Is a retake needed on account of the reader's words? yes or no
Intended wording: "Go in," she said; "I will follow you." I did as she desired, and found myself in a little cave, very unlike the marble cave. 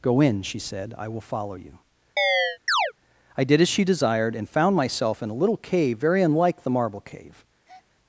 no